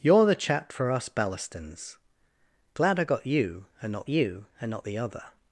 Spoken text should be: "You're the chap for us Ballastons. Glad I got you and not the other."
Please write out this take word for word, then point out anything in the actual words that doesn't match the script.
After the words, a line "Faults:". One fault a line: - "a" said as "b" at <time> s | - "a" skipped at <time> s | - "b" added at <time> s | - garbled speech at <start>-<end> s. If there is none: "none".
"You're the chap for us Ballastons. Glad I got you and not you and not the other."
Faults:
- "you and not" added at 4.1 s